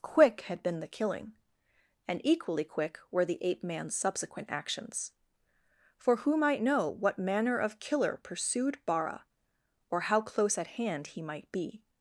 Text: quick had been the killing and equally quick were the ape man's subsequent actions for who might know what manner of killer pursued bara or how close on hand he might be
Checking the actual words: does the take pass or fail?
fail